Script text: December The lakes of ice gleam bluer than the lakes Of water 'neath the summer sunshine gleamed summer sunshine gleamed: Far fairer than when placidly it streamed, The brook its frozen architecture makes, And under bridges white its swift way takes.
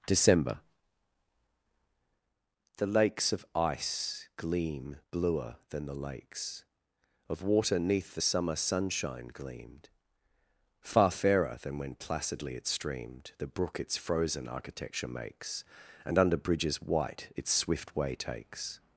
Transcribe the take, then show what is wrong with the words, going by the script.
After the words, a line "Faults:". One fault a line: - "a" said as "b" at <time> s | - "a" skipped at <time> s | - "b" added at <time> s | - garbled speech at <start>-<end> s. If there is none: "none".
December The lakes of ice gleam bluer than the lakes Of water 'neath the summer sunshine gleamed: Far fairer than when placidly it streamed, The brook its frozen architecture makes, And under bridges white its swift way takes.
Faults:
- "summer sunshine gleamed" skipped at 9.9 s